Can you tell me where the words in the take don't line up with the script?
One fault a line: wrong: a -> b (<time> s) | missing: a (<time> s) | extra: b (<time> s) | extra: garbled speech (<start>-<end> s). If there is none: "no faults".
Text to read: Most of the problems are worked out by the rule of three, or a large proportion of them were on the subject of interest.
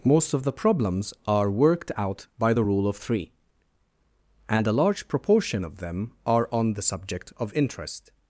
wrong: or -> and (4.5 s)
wrong: were -> are (6.3 s)